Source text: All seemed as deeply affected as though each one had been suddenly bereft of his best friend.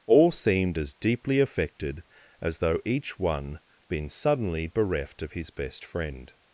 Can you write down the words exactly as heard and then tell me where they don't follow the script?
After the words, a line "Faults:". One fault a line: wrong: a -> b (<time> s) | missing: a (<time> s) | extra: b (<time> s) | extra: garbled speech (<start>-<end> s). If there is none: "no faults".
All seemed as deeply affected as though each one been suddenly bereft of his best friend.
Faults:
missing: had (3.6 s)